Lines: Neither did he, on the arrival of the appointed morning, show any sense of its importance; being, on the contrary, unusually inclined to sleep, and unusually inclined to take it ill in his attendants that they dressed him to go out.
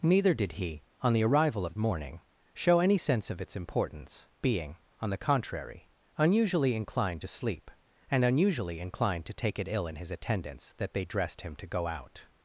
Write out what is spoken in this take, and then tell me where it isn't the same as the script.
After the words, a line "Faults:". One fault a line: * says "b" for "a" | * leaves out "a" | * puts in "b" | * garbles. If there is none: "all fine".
Neither did he, on the arrival of morning, show any sense of its importance; being, on the contrary, unusually inclined to sleep, and unusually inclined to take it ill in his attendants that they dressed him to go out.
Faults:
* leaves out "the appointed"